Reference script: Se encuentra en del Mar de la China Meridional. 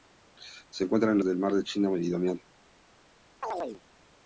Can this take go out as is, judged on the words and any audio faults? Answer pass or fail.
fail